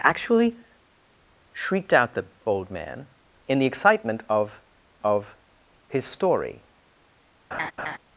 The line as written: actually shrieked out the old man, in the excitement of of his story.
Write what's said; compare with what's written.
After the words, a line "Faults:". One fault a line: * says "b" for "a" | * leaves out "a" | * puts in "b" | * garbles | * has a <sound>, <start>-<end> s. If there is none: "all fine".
actually shrieked out the old man, in the excitement of of his story.
Faults:
* has a laugh, 7.5-8.0 s